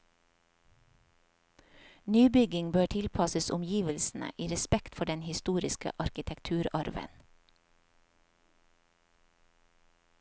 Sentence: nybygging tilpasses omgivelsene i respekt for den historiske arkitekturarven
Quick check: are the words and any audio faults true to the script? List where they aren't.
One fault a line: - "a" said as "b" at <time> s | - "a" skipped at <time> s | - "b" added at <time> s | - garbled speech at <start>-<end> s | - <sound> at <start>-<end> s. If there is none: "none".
- "bør" added at 2.7 s